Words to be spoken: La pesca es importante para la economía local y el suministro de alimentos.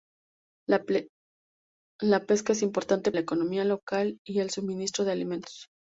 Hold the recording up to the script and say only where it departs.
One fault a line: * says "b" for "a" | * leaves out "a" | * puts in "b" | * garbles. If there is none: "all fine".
* leaves out "para"